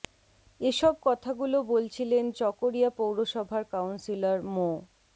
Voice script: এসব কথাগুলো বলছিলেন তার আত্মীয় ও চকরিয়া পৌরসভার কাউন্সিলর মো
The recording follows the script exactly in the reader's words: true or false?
false